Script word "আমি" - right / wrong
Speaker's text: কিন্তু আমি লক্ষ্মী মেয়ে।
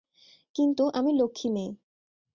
right